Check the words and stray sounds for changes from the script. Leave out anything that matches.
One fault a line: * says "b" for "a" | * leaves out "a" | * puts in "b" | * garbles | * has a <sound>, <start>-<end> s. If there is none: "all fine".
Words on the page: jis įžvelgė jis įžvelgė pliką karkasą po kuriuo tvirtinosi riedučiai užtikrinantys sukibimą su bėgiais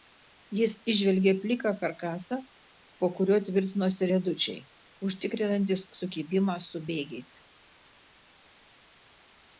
* leaves out "jis įžvelgė"